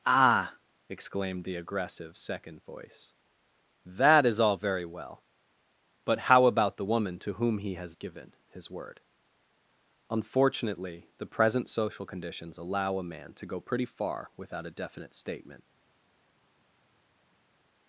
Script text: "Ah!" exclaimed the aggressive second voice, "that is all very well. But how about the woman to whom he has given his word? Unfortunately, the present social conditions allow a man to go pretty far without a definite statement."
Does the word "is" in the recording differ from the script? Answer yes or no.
no